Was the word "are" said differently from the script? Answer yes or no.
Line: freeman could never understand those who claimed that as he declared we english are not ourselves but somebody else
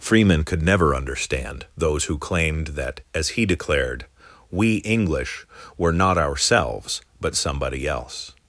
yes